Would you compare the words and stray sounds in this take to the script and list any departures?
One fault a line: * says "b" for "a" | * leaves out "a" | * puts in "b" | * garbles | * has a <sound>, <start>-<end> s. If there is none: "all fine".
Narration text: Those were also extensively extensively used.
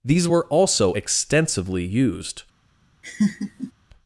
* says "These" for "Those"
* leaves out "extensively"
* has a laugh, 3.0-3.7 s